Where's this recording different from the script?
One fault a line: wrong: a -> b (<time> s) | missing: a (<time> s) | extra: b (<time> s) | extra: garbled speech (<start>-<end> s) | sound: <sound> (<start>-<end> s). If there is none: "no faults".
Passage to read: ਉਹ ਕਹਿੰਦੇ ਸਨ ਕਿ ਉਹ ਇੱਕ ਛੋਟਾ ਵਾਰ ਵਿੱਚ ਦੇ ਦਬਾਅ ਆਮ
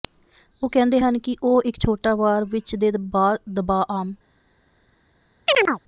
wrong: ਸਨ -> ਹਨ (1.0 s)
sound: chirp (5.5-5.8 s)